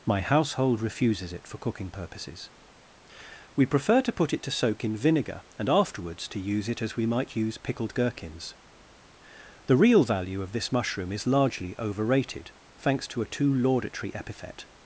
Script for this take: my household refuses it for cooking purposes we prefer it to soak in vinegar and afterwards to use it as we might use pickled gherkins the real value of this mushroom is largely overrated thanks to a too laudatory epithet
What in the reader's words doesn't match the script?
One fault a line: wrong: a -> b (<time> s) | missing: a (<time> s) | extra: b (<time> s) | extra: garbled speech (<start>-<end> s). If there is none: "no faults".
extra: to put (4.0 s)